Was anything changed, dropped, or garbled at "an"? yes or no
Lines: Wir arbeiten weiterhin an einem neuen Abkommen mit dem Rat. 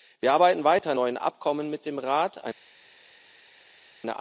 yes